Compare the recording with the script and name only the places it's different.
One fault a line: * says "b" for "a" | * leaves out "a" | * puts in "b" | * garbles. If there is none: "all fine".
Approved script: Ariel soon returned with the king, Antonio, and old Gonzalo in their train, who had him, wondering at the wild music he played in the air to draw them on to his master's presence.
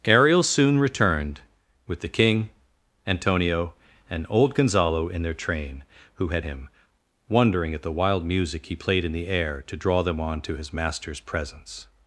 all fine